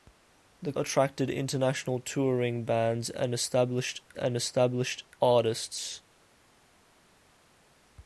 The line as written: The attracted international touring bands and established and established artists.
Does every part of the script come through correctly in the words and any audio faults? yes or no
yes